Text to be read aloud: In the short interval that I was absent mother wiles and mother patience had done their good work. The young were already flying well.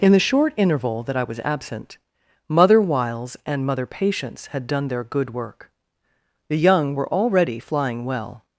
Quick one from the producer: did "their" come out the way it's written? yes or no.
yes